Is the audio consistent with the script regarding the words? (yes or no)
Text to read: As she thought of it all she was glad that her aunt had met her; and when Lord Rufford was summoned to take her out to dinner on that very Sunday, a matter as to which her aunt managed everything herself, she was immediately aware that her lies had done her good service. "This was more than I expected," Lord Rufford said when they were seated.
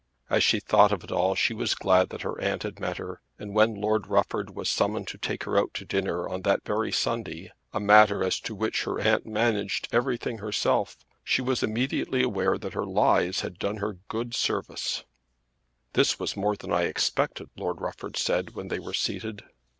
yes